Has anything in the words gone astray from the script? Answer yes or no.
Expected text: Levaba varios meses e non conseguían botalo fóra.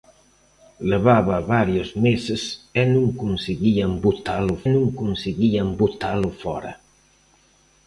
yes